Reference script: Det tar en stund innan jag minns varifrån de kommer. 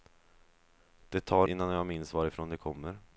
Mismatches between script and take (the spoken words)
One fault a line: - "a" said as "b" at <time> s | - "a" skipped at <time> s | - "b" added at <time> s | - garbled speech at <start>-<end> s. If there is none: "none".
- "en stund" skipped at 1.5 s